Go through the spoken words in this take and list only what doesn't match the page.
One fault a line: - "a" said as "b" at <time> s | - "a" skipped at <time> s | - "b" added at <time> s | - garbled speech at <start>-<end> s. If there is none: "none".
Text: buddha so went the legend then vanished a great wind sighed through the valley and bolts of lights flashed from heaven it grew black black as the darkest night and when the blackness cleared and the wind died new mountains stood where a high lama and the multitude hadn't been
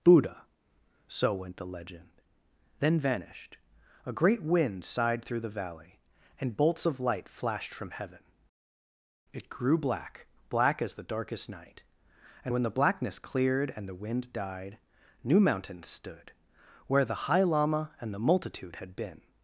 - "lights" said as "light" at 7.0 s
- "a" said as "the" at 17.0 s
- "hadn't" said as "had" at 18.7 s